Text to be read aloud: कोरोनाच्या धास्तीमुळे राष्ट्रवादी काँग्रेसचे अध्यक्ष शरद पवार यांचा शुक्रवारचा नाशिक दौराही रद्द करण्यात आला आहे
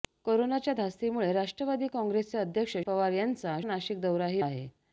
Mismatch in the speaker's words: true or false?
true